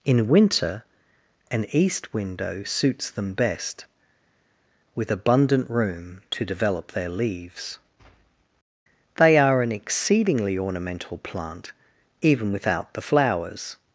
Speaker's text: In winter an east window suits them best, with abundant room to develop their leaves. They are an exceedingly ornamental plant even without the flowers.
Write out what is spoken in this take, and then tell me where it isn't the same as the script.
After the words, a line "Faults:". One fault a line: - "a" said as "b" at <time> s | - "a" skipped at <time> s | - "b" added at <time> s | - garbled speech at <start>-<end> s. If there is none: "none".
In winter an east window suits them best, with abundant room to develop their leaves. They are an exceedingly ornamental plant even without the flowers.
Faults:
none